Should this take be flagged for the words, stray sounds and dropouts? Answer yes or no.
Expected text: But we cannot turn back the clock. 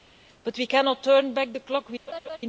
yes